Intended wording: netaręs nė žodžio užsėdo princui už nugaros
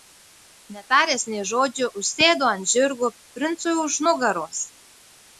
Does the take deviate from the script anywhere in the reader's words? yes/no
yes